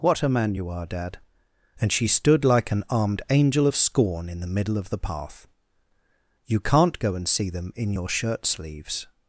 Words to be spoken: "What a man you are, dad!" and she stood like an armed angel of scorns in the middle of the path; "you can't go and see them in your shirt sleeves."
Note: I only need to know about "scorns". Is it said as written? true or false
false